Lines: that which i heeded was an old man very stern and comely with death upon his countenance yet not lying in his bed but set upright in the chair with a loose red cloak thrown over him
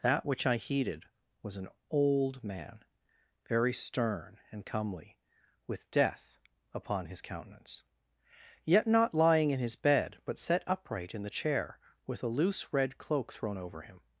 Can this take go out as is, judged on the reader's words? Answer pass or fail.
pass